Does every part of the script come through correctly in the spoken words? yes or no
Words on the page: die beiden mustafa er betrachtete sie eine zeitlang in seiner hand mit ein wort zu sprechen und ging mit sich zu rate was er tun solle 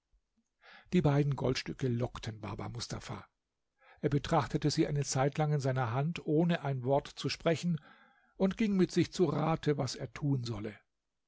no